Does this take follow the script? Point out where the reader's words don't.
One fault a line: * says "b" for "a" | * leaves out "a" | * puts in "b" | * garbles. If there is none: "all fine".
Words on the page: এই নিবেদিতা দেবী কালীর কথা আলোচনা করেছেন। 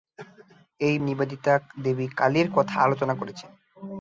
all fine